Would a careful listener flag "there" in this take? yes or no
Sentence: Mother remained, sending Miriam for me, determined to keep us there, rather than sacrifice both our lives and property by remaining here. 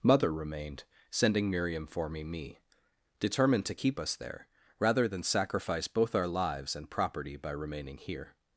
no